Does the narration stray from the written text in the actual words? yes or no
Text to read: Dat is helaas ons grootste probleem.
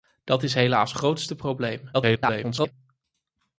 yes